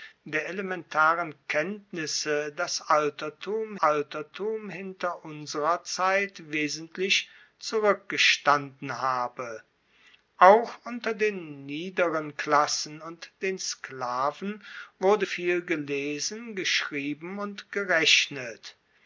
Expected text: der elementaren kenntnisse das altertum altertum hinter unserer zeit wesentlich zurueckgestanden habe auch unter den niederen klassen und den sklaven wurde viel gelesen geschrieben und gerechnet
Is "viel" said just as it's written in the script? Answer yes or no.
yes